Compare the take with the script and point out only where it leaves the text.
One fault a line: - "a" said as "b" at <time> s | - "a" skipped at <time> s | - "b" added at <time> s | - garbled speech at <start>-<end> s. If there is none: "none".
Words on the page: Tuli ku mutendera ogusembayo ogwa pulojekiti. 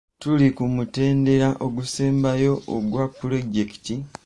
none